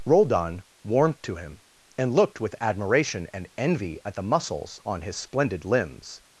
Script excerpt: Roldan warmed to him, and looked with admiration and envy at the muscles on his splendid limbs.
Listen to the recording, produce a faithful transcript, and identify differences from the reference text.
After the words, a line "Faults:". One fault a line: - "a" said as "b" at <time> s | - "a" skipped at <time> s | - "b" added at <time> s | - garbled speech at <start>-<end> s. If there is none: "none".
Roldan warmed to him, and looked with admiration and envy at the muscles on his splendid limbs.
Faults:
none